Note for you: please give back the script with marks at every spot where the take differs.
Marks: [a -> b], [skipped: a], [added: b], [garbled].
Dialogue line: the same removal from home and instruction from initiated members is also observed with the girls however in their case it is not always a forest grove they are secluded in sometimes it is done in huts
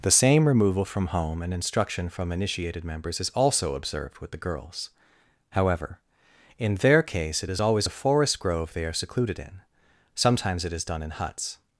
the same removal from home and instruction from initiated members is also observed with the girls however in their case it is [skipped: not] always a forest grove they are secluded in sometimes it is done in huts